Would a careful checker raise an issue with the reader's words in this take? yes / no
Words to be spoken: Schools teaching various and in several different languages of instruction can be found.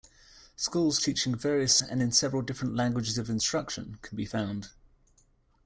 no